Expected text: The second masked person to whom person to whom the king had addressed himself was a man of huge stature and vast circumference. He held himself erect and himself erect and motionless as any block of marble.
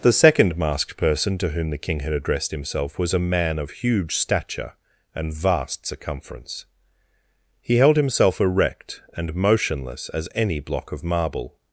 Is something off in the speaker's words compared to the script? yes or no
yes